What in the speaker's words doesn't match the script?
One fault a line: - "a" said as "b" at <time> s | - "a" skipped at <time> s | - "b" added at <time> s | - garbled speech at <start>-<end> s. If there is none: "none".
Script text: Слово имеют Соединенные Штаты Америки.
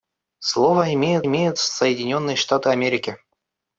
- "имеют" added at 1.3 s